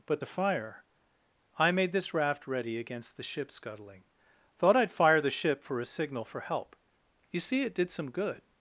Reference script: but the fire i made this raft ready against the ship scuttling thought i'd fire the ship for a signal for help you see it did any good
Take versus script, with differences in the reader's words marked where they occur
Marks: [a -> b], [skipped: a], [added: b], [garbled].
but the fire i made this raft ready against the ship scuttling thought i'd fire the ship for a signal for help you see it did [any -> some] good